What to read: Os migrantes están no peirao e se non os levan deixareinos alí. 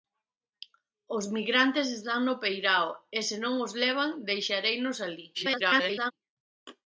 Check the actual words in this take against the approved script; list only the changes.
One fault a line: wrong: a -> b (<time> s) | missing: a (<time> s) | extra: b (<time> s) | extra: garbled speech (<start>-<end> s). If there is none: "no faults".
extra: garbled speech (5.3-6.1 s)